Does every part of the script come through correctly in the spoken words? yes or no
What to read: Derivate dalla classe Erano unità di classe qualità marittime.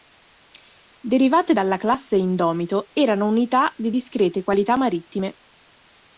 no